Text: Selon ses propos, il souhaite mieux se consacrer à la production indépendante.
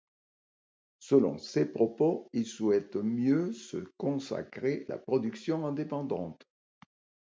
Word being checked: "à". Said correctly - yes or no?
no